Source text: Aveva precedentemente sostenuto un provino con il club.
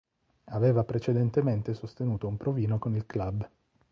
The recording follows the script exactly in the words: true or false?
true